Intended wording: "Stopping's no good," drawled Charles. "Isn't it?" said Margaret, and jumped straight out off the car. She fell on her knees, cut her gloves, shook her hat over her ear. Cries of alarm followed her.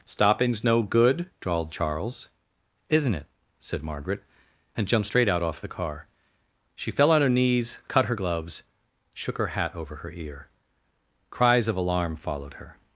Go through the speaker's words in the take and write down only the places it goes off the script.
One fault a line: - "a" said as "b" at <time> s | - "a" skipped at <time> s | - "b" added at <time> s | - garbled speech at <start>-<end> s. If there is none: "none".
none